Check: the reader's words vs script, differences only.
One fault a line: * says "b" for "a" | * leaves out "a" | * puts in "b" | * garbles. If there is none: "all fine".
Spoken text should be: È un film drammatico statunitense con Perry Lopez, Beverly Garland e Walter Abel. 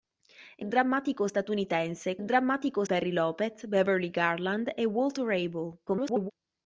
* leaves out "un film"
* says "drammatico" for "con"
* garbles